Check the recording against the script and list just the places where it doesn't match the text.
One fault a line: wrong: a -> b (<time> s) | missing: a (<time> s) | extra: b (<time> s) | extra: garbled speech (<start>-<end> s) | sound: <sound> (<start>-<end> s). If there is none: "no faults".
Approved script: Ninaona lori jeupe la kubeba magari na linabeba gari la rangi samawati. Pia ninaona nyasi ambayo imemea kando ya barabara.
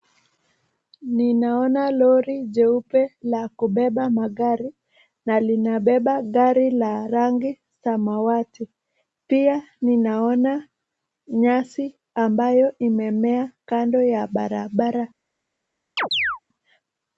sound: chirp (16.0-16.4 s)